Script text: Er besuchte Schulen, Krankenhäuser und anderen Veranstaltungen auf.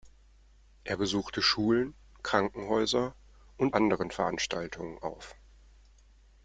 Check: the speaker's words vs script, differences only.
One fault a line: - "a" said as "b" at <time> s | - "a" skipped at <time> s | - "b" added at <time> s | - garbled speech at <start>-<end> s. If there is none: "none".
none